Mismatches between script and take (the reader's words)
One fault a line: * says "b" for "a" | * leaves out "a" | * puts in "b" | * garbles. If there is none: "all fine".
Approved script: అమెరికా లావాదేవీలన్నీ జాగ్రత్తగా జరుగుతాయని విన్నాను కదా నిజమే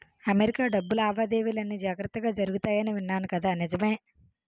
* puts in "డబ్బు"